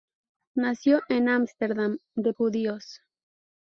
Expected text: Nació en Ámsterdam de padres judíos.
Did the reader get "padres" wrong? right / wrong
wrong